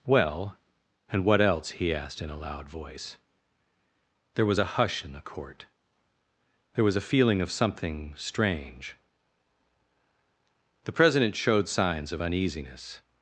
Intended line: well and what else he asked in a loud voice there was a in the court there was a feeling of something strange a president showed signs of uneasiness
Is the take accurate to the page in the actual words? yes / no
no